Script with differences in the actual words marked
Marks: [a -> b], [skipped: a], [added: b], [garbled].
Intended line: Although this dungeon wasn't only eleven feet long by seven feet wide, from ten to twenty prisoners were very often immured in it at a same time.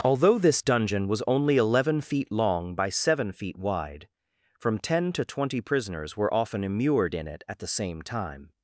Although this dungeon [wasn't -> was] only eleven feet long by seven feet wide, from ten to twenty prisoners were [skipped: very] often immured in it at [a -> the] same time.